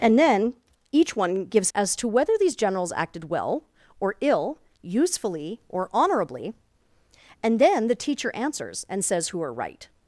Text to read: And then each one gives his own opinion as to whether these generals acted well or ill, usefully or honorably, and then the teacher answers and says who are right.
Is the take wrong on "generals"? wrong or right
right